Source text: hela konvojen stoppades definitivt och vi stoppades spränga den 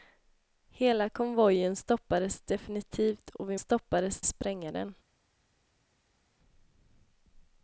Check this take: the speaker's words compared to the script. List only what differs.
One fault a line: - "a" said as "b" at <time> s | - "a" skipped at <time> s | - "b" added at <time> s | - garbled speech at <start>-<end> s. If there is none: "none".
none